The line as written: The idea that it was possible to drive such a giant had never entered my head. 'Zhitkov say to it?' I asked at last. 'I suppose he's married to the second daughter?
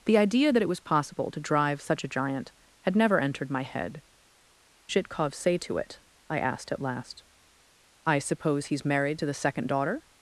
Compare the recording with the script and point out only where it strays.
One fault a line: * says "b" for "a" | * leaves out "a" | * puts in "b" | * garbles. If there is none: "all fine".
all fine